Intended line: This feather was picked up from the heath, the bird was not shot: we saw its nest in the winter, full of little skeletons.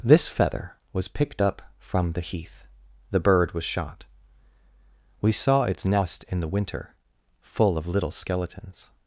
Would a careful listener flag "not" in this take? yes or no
yes